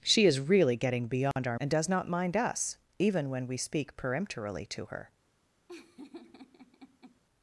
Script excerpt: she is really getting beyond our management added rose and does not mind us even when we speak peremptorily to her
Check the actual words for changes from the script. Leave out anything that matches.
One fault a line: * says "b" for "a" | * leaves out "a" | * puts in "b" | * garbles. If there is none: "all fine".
* leaves out "management added rose"